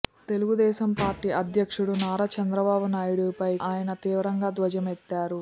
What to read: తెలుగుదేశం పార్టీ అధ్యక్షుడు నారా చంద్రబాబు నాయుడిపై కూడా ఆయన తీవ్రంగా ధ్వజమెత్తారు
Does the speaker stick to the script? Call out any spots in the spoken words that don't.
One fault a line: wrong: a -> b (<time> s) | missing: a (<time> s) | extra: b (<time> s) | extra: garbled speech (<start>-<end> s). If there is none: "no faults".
missing: కూడా (3.5 s)